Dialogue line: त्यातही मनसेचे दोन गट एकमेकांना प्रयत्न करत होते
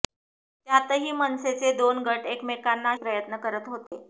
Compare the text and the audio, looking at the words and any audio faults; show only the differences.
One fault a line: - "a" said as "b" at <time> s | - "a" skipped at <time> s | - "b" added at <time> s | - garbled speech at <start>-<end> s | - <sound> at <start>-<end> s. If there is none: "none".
- dropout at 3.9-3.9 s